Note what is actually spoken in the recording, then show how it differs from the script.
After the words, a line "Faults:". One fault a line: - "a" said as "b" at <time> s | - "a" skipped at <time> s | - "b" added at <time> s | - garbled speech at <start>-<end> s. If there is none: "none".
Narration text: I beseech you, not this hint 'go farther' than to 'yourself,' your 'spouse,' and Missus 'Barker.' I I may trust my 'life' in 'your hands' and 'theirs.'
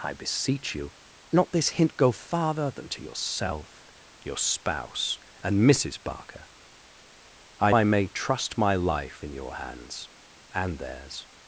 I beseech you, not this hint 'go farther' than to 'yourself,' your 'spouse,' and Missus 'Barker.' I I may trust my 'life' in 'your hands' and 'theirs.'
Faults:
none